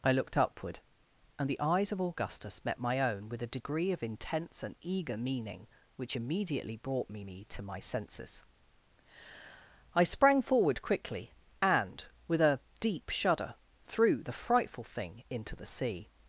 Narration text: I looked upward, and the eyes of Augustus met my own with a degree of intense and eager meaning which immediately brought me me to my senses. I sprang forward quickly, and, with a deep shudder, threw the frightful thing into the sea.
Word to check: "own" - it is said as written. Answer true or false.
true